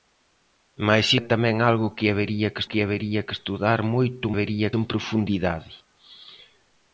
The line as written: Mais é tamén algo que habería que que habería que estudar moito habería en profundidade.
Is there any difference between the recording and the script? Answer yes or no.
no